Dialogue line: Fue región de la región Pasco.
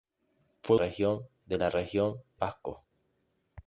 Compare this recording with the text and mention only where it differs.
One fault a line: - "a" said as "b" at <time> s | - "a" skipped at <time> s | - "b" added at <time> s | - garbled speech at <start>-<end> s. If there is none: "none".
none